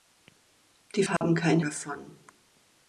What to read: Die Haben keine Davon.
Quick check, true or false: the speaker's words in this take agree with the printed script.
true